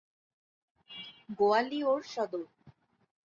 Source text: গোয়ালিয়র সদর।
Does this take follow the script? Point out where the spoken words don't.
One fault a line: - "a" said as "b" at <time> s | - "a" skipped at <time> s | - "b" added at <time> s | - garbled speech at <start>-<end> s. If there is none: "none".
none